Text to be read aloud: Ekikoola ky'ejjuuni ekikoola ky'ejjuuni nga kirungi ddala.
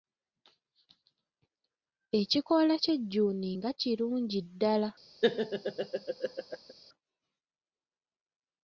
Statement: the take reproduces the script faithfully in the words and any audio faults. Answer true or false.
false